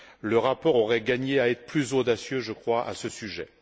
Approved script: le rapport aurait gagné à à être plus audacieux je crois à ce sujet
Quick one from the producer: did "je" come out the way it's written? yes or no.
yes